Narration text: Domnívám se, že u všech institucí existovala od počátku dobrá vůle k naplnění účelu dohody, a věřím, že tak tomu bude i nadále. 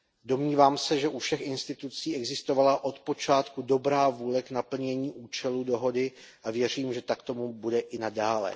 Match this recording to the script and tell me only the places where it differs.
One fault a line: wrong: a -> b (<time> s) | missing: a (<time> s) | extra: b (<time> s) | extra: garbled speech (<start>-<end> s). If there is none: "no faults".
no faults